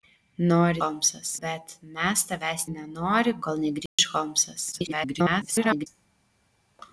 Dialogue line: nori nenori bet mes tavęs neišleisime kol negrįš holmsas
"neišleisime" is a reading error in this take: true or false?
true